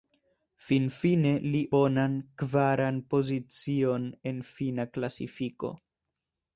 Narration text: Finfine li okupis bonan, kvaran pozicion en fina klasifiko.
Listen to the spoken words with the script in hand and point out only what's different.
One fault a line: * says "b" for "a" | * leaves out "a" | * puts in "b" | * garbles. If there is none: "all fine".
* leaves out "okupis"